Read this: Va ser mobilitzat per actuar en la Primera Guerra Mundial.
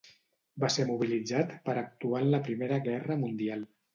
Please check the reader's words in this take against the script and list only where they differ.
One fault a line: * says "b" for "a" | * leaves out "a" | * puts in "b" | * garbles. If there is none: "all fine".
all fine